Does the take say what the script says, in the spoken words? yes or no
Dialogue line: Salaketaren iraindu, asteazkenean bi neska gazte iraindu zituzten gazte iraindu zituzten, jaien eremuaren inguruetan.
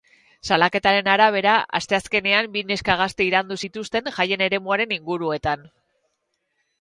no